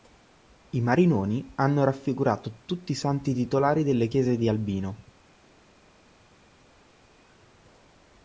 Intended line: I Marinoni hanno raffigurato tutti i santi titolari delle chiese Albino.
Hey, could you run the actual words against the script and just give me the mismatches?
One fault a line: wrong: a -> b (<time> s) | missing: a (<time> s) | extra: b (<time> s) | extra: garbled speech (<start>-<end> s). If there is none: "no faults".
extra: di (4.4 s)